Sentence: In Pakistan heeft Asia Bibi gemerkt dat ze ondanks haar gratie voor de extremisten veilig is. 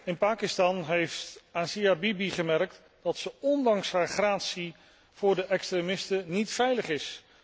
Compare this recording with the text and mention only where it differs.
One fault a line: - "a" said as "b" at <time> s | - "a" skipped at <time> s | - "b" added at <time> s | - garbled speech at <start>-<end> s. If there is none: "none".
- "niet" added at 6.3 s